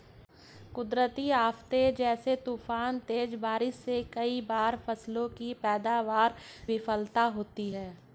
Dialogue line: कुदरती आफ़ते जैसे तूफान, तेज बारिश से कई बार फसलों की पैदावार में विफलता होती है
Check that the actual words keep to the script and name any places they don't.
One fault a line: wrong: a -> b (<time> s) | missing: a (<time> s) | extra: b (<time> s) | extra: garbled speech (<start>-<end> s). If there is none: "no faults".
missing: में (6.3 s)